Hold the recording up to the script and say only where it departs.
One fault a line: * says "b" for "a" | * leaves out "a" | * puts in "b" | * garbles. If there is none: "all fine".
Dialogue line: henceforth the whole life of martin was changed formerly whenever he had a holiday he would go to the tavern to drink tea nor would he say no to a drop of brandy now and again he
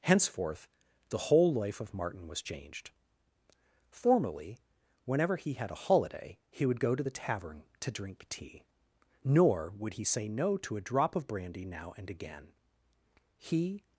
all fine